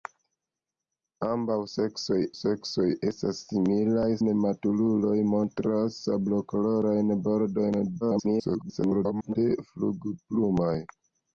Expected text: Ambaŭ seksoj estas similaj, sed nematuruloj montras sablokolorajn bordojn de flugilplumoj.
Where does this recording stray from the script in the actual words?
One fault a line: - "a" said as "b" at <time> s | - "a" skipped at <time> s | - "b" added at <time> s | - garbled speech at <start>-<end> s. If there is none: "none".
- "seksoj" added at 2.4 s
- "sed" skipped at 4.0 s
- garbled speech at 8.0-9.4 s